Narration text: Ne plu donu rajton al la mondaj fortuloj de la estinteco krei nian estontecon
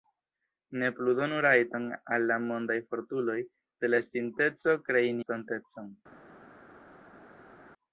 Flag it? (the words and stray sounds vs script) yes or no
yes